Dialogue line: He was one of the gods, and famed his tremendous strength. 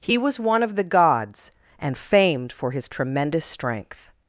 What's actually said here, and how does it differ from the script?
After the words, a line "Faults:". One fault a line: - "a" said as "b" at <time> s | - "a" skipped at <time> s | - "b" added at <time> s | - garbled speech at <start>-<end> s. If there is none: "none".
He was one of the gods, and famed for his tremendous strength.
Faults:
- "for" added at 2.5 s